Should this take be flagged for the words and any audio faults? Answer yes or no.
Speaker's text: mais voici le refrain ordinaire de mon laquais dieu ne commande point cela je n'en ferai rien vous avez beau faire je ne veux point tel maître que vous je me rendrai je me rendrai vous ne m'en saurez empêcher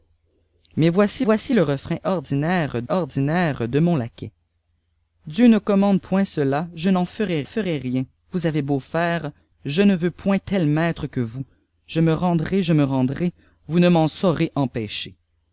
yes